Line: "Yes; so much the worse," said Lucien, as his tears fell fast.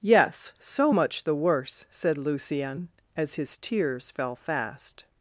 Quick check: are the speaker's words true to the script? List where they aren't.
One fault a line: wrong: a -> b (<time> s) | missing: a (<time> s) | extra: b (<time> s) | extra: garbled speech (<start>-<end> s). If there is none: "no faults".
no faults